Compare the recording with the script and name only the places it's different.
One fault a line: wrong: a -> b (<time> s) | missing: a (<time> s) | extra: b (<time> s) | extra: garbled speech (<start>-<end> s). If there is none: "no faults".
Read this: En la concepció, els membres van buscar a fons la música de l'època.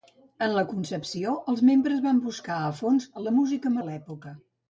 no faults